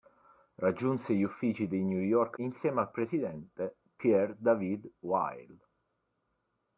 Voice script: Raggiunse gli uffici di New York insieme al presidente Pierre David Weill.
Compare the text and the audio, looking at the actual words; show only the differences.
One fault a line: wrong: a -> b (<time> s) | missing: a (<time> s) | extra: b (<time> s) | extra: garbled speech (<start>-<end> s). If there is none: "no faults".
no faults